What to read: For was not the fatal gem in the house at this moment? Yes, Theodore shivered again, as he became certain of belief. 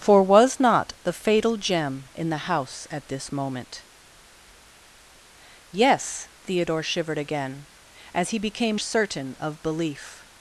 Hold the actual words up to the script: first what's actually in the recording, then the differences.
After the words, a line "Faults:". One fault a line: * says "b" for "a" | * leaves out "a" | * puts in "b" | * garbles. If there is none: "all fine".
For was not the fatal gem in the house at this moment? Yes, Theodore shivered again, as he became certain of belief.
Faults:
all fine